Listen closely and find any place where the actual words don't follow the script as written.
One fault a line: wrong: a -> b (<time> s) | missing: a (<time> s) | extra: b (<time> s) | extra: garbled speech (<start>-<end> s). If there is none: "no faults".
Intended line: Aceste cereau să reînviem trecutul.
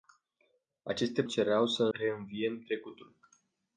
no faults